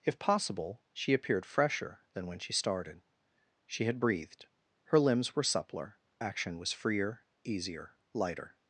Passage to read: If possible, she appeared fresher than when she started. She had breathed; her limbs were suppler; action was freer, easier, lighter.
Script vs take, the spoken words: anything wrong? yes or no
no